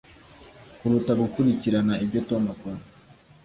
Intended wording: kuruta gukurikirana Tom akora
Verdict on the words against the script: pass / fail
fail